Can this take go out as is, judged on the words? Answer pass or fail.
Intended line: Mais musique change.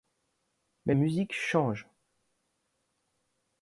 pass